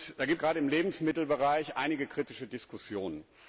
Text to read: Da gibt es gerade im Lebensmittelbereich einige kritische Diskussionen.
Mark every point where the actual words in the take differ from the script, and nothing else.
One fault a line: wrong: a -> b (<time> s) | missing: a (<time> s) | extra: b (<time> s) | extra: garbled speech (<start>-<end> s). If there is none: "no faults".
missing: es (0.4 s)